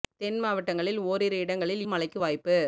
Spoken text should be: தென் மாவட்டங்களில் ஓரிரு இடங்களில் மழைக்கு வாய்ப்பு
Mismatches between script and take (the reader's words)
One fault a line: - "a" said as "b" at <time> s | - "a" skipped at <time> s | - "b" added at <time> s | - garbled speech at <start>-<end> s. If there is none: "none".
none